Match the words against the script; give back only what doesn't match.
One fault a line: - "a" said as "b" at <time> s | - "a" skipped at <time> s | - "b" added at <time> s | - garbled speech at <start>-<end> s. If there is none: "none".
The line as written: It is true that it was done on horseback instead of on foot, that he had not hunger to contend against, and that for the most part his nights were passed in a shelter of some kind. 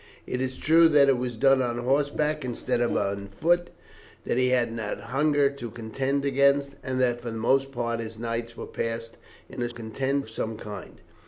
- "shelter" said as "contend" at 9.7 s